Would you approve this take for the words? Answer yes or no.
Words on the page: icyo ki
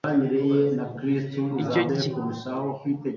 yes